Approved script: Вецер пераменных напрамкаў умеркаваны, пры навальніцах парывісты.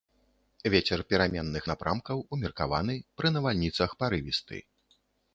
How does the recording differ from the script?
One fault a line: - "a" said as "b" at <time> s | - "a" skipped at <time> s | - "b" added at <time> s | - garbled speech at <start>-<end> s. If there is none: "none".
none